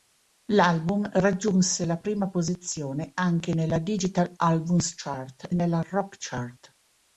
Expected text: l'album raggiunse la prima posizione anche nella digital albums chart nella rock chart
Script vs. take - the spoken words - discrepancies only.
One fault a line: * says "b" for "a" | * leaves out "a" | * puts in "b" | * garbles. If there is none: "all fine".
all fine